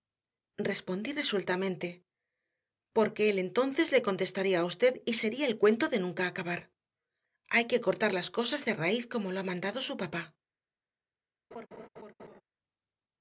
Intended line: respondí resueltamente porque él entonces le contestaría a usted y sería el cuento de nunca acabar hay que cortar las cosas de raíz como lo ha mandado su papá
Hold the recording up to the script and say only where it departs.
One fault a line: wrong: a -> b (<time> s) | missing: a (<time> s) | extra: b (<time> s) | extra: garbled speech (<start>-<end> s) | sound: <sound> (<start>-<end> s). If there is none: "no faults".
sound: laugh (11.5-12.4 s)